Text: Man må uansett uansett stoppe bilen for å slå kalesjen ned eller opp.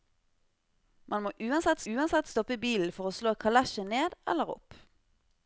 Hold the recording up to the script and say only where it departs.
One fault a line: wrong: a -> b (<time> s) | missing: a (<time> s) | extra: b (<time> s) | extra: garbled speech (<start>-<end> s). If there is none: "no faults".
no faults